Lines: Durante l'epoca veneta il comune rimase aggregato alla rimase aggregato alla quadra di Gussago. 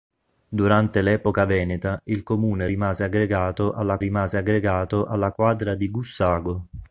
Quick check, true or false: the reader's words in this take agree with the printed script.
true